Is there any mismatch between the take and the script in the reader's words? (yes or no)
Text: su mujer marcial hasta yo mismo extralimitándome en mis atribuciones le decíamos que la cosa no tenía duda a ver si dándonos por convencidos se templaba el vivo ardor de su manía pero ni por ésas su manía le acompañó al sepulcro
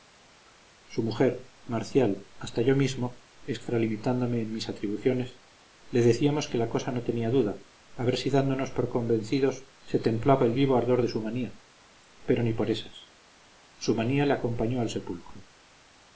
no